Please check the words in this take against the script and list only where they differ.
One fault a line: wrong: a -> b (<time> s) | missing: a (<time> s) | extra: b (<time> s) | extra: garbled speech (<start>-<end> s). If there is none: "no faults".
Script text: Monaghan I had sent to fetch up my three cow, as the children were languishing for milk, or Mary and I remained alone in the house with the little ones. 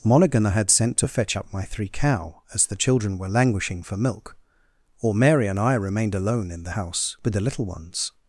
no faults